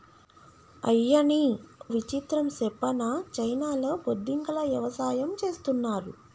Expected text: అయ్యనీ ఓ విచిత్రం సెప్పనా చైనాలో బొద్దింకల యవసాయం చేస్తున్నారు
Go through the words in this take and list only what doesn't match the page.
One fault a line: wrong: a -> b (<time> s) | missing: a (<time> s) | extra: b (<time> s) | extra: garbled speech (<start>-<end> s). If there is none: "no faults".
missing: ఓ (1.4 s)